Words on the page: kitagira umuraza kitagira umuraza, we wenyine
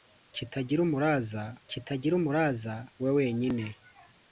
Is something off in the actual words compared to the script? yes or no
no